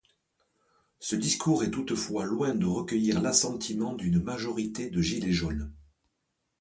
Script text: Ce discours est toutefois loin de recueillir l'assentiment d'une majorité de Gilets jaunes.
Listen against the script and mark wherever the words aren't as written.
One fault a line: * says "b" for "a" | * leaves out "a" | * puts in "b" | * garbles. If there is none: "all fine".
all fine